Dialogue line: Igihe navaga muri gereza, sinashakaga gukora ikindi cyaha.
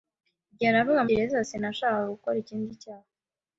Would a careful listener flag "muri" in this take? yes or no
yes